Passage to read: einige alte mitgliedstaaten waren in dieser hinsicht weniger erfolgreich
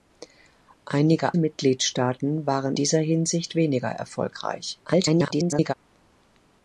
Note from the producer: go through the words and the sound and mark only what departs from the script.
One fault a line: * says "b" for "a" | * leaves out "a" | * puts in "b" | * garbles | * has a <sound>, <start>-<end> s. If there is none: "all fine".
* leaves out "alte"
* leaves out "in"
* garbles